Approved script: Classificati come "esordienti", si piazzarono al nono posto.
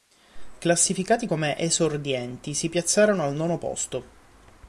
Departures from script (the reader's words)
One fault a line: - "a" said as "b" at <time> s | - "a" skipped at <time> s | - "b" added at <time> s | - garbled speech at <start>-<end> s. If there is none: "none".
none